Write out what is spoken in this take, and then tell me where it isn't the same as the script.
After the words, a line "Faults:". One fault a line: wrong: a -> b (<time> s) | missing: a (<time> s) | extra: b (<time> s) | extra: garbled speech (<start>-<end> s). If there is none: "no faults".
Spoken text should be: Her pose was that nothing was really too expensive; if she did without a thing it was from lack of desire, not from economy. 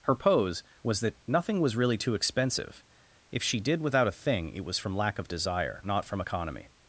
Her pose was that nothing was really too expensive; if she did without a thing it was from lack of desire, not from economy.
Faults:
no faults